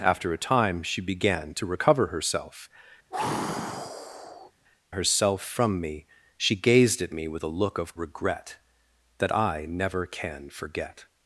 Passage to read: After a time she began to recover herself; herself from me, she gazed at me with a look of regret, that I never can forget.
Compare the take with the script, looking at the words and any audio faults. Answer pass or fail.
fail